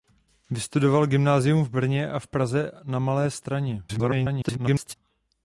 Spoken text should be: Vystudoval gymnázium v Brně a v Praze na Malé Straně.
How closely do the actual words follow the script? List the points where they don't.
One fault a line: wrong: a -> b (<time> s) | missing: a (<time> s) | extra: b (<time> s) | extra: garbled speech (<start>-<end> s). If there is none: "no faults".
extra: garbled speech (3.9-4.9 s)